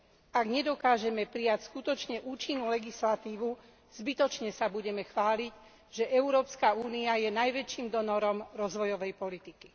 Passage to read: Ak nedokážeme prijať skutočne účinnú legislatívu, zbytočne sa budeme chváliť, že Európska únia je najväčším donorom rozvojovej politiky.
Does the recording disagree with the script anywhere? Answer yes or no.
no